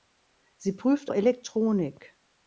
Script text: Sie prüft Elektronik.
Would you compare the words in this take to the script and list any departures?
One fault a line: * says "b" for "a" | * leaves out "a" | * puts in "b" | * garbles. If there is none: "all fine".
all fine